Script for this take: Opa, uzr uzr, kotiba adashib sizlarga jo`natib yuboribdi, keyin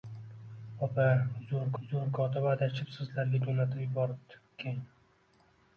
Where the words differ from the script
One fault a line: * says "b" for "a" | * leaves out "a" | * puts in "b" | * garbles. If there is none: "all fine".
all fine